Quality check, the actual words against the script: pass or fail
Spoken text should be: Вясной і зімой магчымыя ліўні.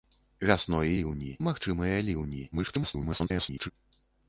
fail